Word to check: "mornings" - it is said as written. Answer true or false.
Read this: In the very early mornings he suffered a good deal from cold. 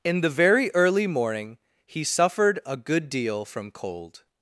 false